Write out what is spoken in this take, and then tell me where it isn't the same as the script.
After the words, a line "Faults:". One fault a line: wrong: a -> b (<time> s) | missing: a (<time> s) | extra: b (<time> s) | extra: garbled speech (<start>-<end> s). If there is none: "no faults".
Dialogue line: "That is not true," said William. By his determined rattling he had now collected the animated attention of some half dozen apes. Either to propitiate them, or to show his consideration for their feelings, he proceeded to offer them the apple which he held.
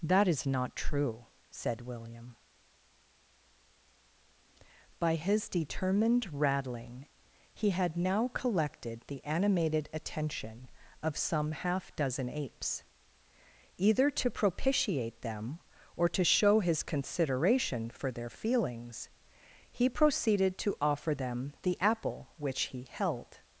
"That is not true," said William. By his determined rattling he had now collected the animated attention of some half dozen apes. Either to propitiate them, or to show his consideration for their feelings, he proceeded to offer them the apple which he held.
Faults:
no faults